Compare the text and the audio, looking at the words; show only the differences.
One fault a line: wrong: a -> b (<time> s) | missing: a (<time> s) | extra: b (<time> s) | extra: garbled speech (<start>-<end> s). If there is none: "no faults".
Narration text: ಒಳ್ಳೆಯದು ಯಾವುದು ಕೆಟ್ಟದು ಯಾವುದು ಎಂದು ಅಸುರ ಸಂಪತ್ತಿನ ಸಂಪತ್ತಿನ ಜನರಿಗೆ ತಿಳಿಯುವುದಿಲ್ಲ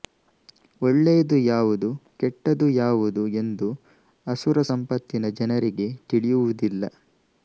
missing: ಸಂಪತ್ತಿನ (5.3 s)